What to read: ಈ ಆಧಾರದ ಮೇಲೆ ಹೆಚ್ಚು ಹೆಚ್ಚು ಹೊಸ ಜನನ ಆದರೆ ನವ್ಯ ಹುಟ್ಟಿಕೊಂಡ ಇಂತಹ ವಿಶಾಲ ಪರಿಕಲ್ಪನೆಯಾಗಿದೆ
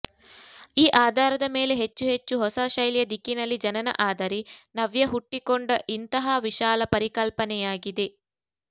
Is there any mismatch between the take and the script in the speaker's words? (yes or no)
yes